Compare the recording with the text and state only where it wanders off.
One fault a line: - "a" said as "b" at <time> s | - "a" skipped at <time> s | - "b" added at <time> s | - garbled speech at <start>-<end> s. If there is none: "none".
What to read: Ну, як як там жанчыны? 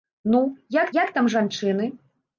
none